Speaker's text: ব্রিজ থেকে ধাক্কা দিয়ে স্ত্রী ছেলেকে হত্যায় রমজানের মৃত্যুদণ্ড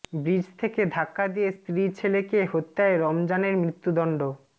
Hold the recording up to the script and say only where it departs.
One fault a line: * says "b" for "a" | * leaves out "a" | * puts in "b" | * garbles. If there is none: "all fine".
all fine